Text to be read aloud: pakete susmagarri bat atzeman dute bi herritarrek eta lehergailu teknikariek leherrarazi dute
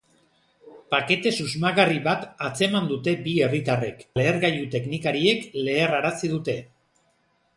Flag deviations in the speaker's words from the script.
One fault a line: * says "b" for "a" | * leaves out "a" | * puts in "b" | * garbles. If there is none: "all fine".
* leaves out "eta"